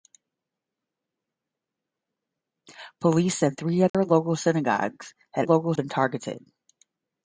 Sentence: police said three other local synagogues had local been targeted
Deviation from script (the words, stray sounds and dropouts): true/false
true